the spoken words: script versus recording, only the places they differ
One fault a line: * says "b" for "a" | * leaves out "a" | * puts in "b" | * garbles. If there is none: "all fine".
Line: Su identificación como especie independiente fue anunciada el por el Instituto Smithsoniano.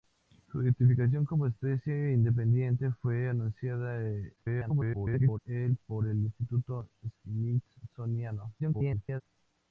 * garbles
* garbles